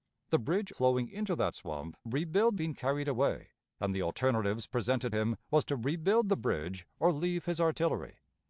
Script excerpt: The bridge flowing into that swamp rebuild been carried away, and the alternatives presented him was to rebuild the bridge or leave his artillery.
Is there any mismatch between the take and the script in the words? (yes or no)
no